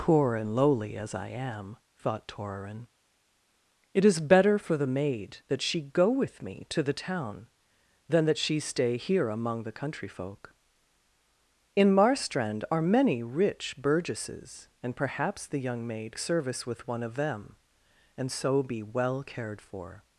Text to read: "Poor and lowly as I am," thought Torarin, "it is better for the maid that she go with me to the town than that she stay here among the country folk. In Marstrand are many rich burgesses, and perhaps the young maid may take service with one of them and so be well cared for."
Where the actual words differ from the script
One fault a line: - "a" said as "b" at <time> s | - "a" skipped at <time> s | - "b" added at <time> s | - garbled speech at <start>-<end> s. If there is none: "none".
- "may take" skipped at 16.2 s